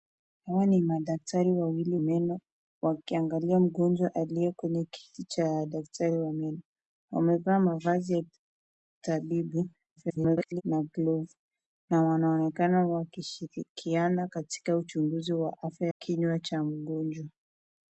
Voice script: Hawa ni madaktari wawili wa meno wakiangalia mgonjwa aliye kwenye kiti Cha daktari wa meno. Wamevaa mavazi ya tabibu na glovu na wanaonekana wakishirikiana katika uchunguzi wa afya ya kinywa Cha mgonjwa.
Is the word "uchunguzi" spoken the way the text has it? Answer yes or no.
yes